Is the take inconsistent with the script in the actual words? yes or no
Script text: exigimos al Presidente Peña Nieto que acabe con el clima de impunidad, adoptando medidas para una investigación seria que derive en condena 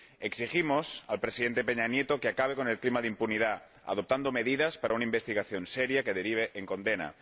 no